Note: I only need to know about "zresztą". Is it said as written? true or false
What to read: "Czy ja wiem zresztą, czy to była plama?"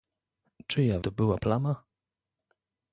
false